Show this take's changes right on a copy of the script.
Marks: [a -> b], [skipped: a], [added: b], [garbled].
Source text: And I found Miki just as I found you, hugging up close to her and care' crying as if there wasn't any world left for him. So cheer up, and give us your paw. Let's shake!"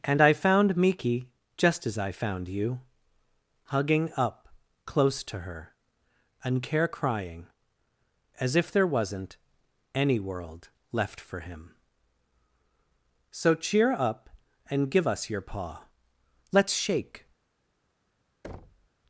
And I found Miki just as I found you, hugging up close to her and care' crying as if there wasn't any world left for him. So cheer up, and give us your paw. Let's shake!"